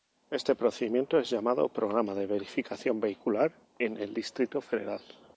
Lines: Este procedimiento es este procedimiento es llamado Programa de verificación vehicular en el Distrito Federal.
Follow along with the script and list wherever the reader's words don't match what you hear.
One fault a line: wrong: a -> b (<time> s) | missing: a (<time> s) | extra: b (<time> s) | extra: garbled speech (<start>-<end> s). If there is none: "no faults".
missing: este procedimiento es (1.3 s)